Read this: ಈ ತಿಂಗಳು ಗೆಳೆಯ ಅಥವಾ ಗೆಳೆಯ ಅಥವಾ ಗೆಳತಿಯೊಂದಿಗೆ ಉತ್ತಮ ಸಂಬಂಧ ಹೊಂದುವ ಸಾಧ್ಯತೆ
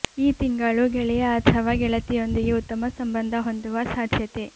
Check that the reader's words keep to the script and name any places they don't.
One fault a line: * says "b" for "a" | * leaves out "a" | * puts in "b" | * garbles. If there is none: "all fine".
* leaves out "ಗೆಳೆಯ ಅಥವಾ"